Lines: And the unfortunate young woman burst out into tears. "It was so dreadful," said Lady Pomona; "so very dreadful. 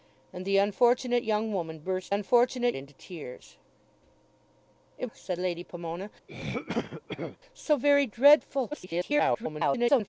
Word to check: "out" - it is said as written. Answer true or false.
false